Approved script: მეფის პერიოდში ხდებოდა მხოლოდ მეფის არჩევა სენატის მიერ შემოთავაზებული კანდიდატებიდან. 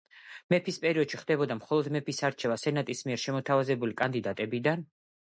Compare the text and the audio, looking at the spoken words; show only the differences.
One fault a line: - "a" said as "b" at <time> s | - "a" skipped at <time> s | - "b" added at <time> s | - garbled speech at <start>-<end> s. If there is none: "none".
none